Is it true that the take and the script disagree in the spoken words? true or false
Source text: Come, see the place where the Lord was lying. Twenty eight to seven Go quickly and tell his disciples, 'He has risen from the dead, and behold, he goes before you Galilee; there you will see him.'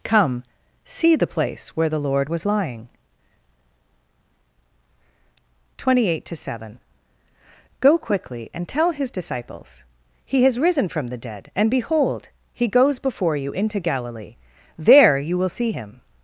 true